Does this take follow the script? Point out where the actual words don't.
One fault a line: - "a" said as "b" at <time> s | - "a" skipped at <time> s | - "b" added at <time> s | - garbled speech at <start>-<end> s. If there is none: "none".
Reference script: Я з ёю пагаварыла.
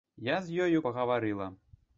none